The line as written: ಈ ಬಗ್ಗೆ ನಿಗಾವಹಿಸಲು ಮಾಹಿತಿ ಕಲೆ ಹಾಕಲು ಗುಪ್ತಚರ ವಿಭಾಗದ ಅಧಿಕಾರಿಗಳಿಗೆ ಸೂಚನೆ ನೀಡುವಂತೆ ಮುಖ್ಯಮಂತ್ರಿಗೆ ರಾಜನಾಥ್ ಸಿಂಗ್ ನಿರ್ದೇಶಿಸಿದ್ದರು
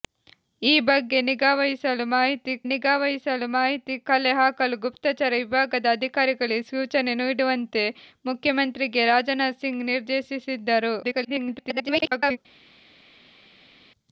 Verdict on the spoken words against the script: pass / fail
fail